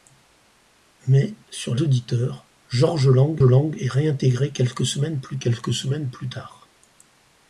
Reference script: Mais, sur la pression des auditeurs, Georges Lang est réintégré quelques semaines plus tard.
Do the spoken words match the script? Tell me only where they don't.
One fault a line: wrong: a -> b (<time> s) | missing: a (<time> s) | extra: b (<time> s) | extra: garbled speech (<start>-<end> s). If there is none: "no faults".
missing: la pression des (1.8 s)
extra: Lang (3.4 s)
extra: quelques semaines plus (5.4 s)